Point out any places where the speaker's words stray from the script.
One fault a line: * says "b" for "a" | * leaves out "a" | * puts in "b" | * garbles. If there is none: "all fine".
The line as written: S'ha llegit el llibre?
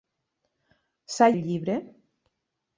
* leaves out "llegit"